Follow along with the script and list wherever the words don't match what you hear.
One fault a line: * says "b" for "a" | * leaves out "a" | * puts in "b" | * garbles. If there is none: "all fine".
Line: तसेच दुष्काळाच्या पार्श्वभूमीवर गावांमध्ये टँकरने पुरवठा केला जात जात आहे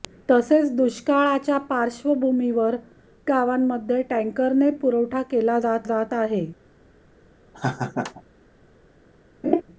all fine